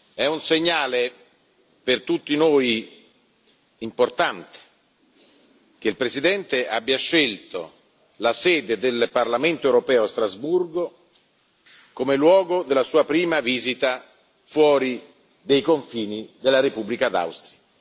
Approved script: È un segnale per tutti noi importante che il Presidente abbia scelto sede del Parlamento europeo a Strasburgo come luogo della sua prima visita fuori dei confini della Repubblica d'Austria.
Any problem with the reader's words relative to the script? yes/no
yes